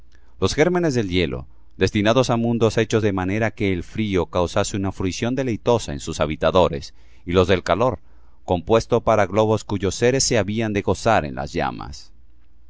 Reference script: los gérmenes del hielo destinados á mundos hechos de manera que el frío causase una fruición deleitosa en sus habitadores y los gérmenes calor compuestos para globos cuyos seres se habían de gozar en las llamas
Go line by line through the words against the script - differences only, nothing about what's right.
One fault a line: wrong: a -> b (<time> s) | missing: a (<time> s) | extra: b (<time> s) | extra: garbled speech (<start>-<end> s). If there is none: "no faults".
wrong: gérmenes -> del (7.5 s)